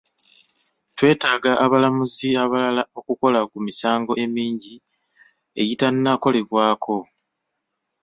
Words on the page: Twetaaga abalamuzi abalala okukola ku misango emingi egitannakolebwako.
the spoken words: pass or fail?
pass